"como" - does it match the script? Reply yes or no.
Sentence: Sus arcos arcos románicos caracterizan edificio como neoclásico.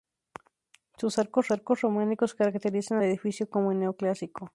yes